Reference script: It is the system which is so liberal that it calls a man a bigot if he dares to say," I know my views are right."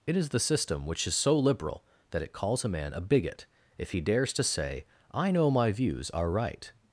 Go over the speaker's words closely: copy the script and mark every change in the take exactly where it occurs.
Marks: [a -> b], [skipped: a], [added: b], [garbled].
It is the system which is so liberal that it calls a man a bigot if he dares to say," I know my views are right."